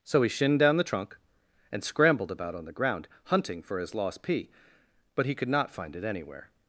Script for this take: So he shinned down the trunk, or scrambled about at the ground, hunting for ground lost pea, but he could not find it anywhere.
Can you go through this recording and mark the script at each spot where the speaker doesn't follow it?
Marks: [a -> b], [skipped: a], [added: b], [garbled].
So he shinned down the trunk, [or -> and] scrambled about [at -> on] the ground, hunting for [ground -> his] lost pea, but he could not find it anywhere.